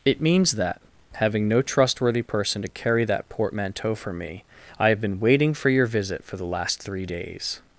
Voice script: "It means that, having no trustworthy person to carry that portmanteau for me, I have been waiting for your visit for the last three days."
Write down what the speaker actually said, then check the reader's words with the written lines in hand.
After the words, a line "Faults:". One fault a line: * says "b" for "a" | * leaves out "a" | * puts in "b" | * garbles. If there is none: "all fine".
"It means that, having no trustworthy person to carry that portmanteau for me, I have been waiting for your visit for the last three days."
Faults:
all fine